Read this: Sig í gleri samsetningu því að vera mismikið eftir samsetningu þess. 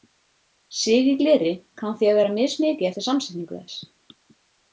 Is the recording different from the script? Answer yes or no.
yes